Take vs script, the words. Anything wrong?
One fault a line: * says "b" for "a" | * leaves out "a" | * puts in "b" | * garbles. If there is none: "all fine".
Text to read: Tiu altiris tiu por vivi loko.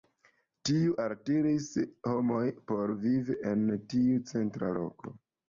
* says "homojn" for "tiu"
* puts in "en tiu centra"